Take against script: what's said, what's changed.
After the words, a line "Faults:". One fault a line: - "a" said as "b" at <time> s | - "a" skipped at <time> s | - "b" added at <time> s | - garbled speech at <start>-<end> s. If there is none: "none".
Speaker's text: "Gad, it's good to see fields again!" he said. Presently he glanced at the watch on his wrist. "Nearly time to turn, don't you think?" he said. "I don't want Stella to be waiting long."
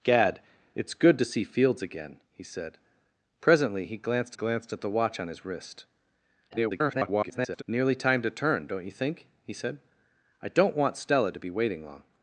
"Gad, it's good to see fields again!" he said. Presently he glanced glanced at the watch on his wrist. [garbled] "Nearly time to turn, don't you think?" he said. "I don't want Stella to be waiting long."
Faults:
- "glanced" added at 4.3 s
- garbled speech at 6.5-7.6 s